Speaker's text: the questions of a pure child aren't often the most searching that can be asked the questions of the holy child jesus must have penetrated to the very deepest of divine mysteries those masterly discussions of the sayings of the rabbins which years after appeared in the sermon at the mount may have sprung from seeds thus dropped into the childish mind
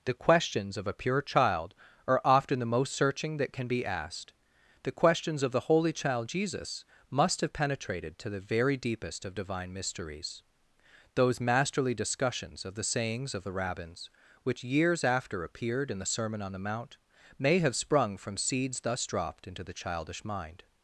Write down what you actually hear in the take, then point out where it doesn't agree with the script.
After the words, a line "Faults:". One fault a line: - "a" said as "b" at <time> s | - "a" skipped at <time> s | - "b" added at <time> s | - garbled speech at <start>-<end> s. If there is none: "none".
the questions of a pure child are often the most searching that can be asked the questions of the holy child jesus must have penetrated to the very deepest of divine mysteries those masterly discussions of the sayings of the rabbins which years after appeared in the sermon on the mount may have sprung from seeds thus dropped into the childish mind
Faults:
- "aren't" said as "are" at 2.1 s
- "at" said as "on" at 16.4 s